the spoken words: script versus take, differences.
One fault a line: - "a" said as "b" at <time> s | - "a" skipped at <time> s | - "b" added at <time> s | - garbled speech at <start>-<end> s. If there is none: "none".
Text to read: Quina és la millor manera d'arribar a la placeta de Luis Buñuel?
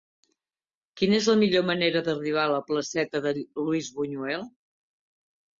none